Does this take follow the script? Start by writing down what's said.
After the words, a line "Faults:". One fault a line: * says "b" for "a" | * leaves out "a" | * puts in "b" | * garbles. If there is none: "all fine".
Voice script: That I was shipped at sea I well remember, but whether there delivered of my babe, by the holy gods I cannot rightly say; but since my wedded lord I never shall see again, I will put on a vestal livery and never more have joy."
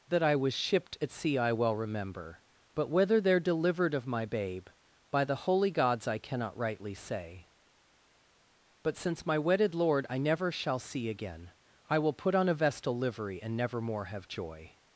That I was shipped at sea I well remember, but whether there delivered of my babe, by the holy gods I cannot rightly say; but since my wedded lord I never shall see again, I will put on a vestal livery and never more have joy."
Faults:
all fine